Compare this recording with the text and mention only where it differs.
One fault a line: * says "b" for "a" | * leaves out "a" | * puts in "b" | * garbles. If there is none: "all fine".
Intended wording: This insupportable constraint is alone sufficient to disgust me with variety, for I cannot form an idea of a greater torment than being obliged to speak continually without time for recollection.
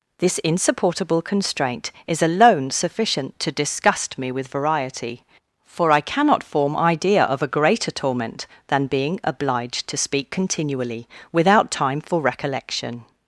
* leaves out "an"